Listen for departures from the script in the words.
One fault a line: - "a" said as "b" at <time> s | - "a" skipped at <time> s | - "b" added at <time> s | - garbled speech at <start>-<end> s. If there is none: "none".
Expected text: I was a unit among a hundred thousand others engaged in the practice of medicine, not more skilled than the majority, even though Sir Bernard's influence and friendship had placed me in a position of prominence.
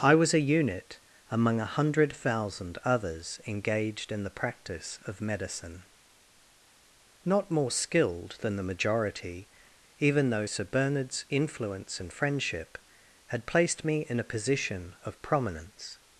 none